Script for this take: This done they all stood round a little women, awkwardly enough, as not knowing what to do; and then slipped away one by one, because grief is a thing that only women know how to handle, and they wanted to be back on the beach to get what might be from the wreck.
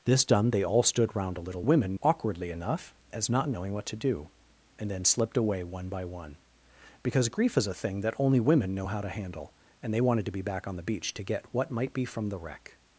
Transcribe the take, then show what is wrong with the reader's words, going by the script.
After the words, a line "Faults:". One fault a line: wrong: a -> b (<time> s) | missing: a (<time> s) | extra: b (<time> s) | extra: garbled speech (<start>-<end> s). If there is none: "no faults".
This done they all stood round a little women, awkwardly enough, as not knowing what to do; and then slipped away one by one, because grief is a thing that only women know how to handle, and they wanted to be back on the beach to get what might be from the wreck.
Faults:
no faults